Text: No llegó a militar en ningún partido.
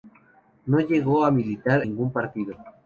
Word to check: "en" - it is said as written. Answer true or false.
false